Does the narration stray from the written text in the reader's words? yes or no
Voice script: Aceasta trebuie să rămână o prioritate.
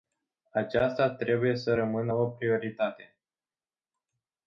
no